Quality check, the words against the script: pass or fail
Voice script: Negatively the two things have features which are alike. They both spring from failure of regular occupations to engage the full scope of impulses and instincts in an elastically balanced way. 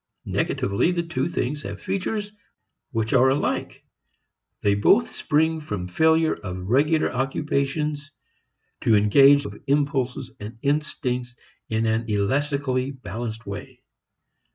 fail